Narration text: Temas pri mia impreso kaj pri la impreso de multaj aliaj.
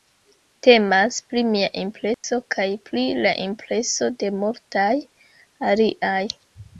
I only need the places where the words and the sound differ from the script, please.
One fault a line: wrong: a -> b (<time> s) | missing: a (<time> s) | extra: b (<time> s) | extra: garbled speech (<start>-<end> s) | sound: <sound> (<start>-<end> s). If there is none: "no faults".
sound: dropout (2.1-2.2 s)